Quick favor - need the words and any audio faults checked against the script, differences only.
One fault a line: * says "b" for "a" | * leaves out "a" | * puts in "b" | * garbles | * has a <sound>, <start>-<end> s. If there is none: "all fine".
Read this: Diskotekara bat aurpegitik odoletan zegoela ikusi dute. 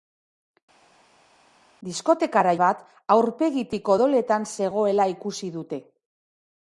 all fine